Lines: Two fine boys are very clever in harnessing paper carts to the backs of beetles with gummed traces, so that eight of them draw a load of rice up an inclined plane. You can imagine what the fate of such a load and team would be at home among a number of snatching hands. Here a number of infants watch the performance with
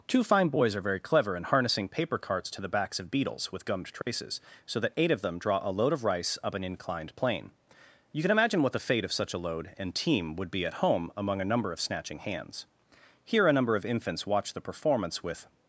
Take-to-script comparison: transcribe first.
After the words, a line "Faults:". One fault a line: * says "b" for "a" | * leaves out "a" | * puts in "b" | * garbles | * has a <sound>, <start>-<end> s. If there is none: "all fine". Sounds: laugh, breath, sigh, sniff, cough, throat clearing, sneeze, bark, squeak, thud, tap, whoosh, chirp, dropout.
Two fine boys are very clever in harnessing paper carts to the backs of beetles with gummed traces, so that eight of them draw a load of rice up an inclined plane. You can imagine what the fate of such a load and team would be at home among a number of snatching hands. Here a number of infants watch the performance with
Faults:
* has a dropout, 4.0-4.1 s